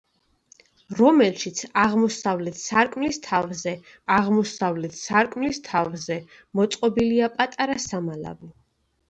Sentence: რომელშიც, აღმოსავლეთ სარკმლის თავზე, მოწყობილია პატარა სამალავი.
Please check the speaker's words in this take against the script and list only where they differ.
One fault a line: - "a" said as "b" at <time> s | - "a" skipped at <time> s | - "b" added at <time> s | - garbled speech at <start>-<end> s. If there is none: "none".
- "აღმოსავლეთ სარკმლის თავზე" added at 4.1 s